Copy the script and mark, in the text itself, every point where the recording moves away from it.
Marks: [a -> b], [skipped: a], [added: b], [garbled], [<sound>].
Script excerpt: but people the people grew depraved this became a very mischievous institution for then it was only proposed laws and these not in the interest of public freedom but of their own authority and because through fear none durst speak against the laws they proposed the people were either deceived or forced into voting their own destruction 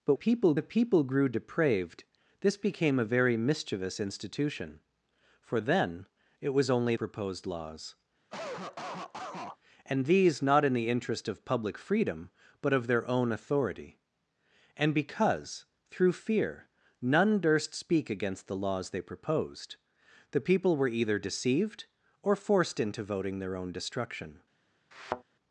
but people the people grew depraved this became a very mischievous institution for then it was only proposed laws [cough] and these not in the interest of public freedom but of their own authority and because through fear none durst speak against the laws they proposed the people were either deceived or forced into voting their own destruction [thud]